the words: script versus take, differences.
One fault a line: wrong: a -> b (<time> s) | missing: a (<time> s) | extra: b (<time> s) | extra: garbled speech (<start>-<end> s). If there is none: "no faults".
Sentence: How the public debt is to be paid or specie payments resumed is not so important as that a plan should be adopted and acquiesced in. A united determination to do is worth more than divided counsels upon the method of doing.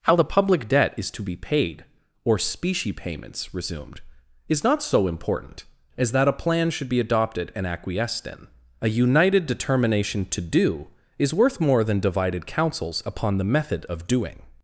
no faults